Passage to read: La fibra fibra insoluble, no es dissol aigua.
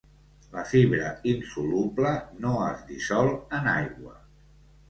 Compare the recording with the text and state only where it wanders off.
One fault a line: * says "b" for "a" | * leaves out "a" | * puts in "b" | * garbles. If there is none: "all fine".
* leaves out "fibra"
* puts in "en"